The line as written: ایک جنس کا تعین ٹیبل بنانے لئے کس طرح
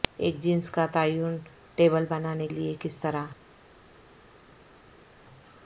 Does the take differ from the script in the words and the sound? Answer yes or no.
no